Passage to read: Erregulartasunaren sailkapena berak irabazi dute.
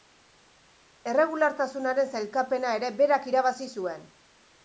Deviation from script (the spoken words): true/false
true